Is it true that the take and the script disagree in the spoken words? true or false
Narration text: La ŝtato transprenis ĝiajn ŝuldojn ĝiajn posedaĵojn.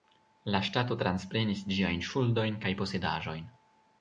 true